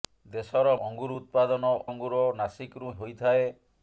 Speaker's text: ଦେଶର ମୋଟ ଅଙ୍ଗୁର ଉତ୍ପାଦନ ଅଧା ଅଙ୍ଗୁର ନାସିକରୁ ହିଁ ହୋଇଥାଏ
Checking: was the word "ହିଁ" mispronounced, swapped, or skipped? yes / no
yes